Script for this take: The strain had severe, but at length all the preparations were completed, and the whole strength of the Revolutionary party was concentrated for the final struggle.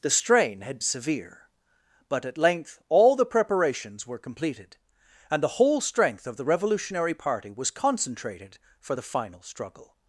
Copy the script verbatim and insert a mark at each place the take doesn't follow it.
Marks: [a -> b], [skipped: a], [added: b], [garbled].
The strain had severe, but at length all the preparations were completed, and the whole strength of the Revolutionary party was concentrated for the final struggle.